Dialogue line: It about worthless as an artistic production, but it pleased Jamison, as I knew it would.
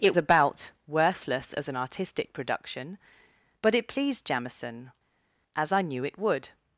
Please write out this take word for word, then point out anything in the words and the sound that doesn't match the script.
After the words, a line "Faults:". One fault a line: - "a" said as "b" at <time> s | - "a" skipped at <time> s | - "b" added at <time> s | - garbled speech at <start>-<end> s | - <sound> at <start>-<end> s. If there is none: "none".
It about worthless as an artistic production, but it pleased Jamison, as I knew it would.
Faults:
none